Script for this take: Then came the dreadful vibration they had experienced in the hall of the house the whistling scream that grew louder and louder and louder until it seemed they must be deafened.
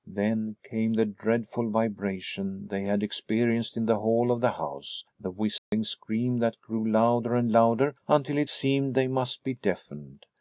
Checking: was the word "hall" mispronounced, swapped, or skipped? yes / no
no